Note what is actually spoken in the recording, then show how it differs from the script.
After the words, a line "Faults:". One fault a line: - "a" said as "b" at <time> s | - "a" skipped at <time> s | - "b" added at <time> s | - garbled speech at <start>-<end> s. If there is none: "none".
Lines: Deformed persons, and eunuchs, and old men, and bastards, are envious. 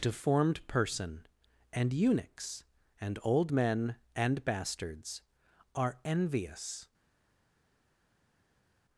Deformed person, and eunuchs, and old men, and bastards, are envious.
Faults:
- "persons" said as "person" at 0.7 s